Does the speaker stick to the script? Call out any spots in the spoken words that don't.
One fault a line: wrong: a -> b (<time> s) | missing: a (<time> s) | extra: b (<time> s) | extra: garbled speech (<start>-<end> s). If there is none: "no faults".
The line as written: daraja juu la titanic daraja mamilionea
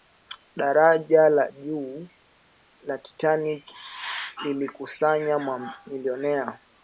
extra: la (1.3 s)
wrong: daraja -> lilikusanya (4.4 s)